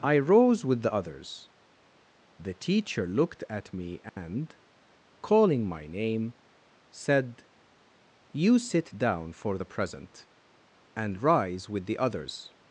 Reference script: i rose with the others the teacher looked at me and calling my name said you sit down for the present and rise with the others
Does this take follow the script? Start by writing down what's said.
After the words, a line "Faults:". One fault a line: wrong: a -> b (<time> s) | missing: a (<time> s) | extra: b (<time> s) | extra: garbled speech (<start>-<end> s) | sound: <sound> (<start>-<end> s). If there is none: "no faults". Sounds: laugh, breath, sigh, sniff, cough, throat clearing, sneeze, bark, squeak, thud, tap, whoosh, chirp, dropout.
i rose with the others the teacher looked at me and calling my name said you sit down for the present and rise with the others
Faults:
sound: dropout (4.1-4.2 s)